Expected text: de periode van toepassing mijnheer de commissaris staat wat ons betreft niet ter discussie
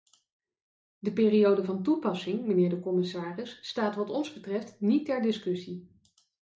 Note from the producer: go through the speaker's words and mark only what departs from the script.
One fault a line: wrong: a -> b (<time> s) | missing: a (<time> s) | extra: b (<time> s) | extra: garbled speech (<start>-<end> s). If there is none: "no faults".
no faults